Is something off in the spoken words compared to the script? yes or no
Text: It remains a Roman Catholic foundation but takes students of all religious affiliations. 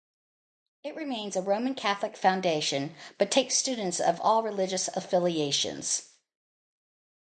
no